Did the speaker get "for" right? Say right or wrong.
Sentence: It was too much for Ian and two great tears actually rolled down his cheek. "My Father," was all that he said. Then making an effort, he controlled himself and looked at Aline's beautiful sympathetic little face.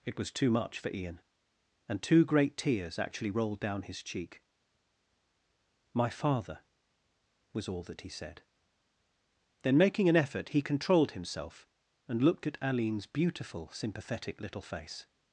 right